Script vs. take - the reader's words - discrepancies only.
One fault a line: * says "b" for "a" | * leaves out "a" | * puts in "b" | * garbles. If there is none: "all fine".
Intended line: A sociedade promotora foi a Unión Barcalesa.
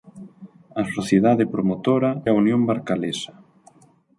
* leaves out "foi"